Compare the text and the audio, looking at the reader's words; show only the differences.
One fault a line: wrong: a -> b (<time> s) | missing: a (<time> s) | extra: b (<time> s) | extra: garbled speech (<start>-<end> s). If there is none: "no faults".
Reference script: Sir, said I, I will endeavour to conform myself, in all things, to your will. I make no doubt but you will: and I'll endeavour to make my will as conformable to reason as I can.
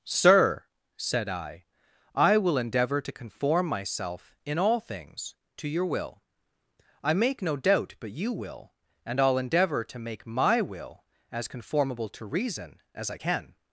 no faults